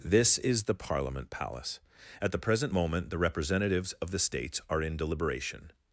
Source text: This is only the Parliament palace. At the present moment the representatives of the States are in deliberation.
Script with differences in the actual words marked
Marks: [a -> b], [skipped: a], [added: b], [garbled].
This is [skipped: only] the Parliament palace. At the present moment the representatives of the States are in deliberation.